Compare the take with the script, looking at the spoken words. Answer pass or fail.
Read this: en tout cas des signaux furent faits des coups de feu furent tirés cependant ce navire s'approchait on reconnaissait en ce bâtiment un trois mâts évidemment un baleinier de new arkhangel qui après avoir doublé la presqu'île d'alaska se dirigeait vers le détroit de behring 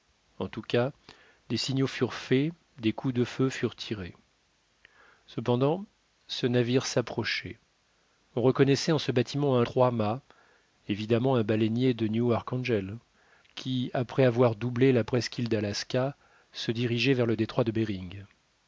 pass